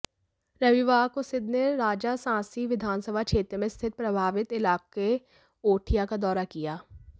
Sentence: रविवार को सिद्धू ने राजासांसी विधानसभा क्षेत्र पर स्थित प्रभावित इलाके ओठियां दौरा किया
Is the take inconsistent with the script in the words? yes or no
yes